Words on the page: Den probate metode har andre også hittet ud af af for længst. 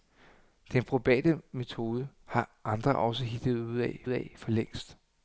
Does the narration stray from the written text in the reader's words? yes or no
no